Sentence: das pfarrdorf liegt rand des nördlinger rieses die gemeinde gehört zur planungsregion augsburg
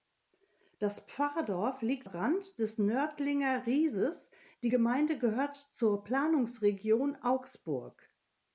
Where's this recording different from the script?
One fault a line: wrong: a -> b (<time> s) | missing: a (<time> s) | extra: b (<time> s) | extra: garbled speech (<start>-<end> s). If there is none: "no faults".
no faults